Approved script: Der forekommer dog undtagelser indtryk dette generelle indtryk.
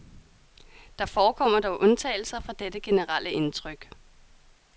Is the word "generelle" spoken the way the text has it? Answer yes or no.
yes